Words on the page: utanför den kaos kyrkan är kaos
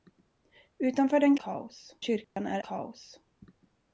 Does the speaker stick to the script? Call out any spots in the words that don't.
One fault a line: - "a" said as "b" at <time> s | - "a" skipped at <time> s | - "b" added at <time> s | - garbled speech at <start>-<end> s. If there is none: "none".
none